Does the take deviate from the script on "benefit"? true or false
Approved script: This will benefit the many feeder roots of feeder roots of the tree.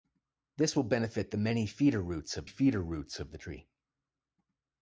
false